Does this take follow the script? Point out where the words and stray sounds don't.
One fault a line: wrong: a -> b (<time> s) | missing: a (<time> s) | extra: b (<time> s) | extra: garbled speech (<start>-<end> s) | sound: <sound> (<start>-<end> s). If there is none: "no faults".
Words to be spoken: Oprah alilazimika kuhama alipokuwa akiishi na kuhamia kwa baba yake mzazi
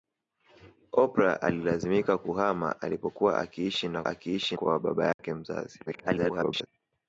wrong: kuhamia -> akiishi (4.1 s)
sound: dropout (5.1-5.2 s)
extra: garbled speech (5.9-6.7 s)